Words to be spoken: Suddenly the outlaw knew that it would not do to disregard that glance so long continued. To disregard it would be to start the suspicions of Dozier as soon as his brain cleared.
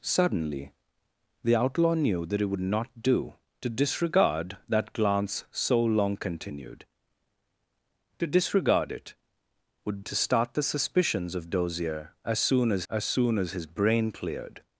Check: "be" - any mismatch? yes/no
yes